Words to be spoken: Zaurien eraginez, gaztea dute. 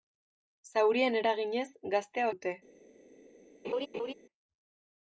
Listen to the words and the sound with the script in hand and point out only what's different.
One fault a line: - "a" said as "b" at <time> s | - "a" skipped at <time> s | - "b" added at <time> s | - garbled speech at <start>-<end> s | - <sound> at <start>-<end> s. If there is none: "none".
- laugh at 3.6-4.1 s